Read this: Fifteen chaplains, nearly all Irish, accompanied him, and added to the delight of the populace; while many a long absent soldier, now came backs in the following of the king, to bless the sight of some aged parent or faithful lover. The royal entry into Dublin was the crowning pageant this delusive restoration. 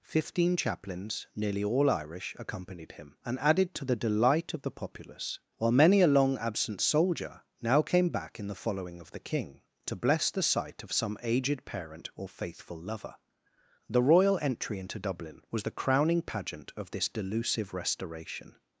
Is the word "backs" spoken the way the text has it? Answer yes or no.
no